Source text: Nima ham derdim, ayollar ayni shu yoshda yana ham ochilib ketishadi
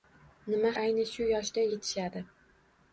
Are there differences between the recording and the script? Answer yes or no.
yes